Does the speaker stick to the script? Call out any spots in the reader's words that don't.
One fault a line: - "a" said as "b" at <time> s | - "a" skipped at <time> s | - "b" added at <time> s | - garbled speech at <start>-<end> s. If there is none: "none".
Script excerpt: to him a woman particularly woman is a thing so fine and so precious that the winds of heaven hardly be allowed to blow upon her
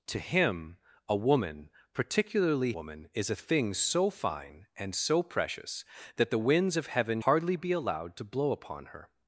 none